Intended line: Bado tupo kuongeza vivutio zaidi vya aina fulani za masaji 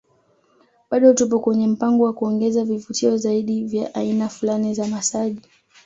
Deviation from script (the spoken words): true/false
true